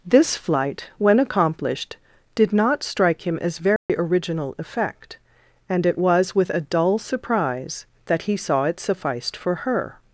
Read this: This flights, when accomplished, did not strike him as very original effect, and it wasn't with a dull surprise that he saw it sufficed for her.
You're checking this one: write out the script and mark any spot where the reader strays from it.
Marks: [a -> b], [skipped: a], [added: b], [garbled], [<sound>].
This [flights, -> flight] when accomplished, did not strike him as very [dropout] original effect, and it [wasn't -> was] with a dull surprise that he saw it sufficed for her.